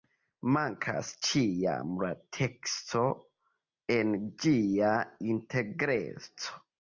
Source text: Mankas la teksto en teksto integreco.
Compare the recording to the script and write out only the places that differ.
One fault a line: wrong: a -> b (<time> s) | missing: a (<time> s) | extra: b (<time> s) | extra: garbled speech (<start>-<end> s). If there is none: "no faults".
extra: ĉiam (1.3 s)
wrong: teksto -> ĝia (4.4 s)